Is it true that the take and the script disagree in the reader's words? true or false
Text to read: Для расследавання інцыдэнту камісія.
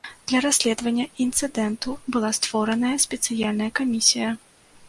true